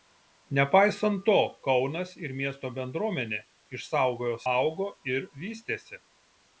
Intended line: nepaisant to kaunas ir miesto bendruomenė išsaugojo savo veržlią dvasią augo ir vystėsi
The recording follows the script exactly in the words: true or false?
false